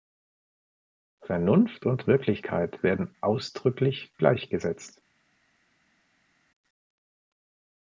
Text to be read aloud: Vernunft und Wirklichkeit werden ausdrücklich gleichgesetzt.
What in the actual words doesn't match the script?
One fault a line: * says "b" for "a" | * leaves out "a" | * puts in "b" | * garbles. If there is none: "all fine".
all fine